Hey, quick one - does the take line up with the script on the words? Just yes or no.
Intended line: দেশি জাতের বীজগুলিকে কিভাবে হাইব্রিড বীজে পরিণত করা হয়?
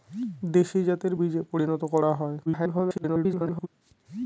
no